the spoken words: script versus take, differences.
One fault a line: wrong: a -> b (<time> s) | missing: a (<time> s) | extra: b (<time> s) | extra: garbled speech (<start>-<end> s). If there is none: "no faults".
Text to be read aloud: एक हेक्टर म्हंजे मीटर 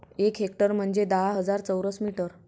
extra: दहा हजार चौरस (1.1 s)